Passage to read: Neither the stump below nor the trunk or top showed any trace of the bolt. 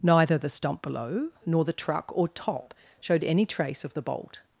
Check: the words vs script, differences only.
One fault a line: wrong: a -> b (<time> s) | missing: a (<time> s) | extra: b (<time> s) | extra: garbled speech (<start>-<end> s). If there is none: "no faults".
wrong: trunk -> truck (1.7 s)